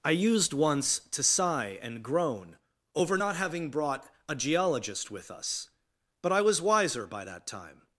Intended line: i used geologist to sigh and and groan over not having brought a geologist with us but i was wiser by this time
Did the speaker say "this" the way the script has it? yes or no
no